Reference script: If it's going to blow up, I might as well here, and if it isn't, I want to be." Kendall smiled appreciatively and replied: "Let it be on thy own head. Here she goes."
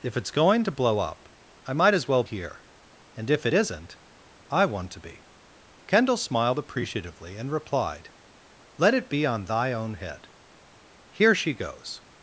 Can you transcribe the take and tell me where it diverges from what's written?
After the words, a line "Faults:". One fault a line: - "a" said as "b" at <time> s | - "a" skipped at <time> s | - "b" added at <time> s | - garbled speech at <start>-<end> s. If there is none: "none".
If it's going to blow up, I might as well here, and if it isn't, I want to be." Kendall smiled appreciatively and replied: "Let it be on thy own head. Here she goes."
Faults:
none